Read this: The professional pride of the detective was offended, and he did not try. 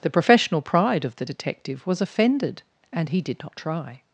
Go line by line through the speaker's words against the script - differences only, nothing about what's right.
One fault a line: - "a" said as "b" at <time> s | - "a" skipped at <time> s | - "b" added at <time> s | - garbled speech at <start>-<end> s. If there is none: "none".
none